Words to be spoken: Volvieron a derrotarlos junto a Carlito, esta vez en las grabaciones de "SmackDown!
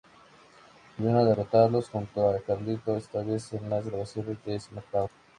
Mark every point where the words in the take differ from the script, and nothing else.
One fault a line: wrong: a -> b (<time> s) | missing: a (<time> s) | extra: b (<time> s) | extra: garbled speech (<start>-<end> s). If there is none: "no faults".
no faults